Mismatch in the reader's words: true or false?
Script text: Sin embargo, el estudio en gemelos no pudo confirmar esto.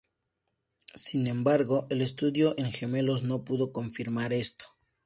false